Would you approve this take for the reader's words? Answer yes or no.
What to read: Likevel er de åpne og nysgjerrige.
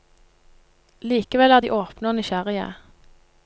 yes